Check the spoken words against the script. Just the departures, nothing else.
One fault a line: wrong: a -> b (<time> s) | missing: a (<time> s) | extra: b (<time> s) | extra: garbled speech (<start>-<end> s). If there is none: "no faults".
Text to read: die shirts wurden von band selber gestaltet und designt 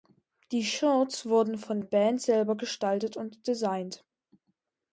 no faults